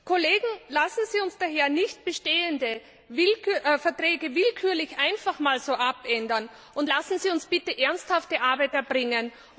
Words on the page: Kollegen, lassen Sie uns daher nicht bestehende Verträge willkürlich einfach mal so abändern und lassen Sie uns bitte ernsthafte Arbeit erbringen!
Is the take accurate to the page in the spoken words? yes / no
yes